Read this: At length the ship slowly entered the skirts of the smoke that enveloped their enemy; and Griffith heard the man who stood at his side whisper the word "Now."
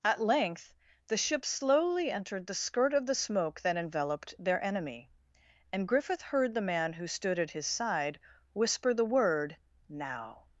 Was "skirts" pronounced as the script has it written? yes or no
no